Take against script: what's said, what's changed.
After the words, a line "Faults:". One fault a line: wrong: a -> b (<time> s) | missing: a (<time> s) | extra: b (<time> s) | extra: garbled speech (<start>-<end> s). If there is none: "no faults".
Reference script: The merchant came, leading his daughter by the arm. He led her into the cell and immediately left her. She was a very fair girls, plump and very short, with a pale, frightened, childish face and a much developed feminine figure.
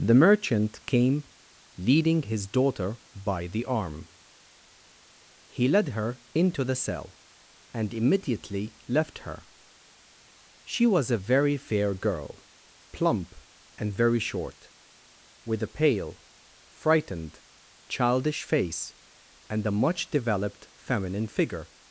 The merchant came, leading his daughter by the arm. He led her into the cell and immediately left her. She was a very fair girl, plump and very short, with a pale, frightened, childish face and a much developed feminine figure.
Faults:
wrong: girls -> girl (11.9 s)